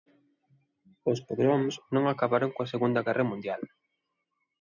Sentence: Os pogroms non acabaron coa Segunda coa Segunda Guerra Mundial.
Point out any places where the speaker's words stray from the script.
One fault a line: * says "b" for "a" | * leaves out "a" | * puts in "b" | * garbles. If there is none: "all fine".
* leaves out "coa Segunda"